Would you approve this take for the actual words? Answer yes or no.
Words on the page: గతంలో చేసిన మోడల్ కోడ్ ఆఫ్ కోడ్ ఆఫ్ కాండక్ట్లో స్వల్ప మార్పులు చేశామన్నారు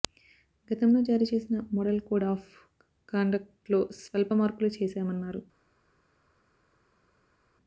no